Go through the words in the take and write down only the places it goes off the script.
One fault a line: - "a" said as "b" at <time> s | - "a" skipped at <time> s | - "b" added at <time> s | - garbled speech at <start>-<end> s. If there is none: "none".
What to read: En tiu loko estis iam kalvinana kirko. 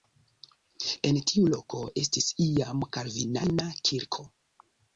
none